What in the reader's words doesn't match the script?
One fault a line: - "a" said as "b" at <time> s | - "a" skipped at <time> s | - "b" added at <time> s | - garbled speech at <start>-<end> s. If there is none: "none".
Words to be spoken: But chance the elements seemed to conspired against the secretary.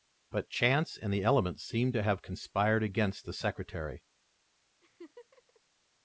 - "and" added at 1.0 s
- "have" added at 2.0 s